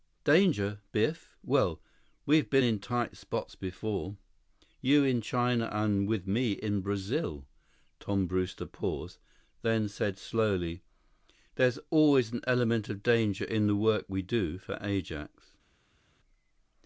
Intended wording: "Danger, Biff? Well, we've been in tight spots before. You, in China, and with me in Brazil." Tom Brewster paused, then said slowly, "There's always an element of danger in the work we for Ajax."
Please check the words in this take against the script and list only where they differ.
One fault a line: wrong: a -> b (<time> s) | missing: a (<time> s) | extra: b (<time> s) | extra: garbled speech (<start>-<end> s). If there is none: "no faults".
extra: do (14.2 s)